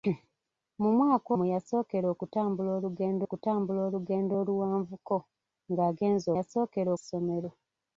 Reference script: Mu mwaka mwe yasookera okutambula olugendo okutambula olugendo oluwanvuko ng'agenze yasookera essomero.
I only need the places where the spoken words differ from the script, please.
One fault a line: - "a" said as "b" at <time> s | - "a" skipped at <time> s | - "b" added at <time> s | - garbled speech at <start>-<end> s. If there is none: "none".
none